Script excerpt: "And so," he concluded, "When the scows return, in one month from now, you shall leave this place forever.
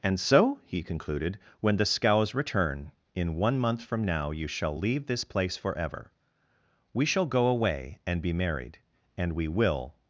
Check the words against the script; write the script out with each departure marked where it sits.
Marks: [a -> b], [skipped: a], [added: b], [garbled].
"And so," he concluded, "When the scows return, in one month from now, you shall leave this place forever. [added: We shall go away and be married and we will]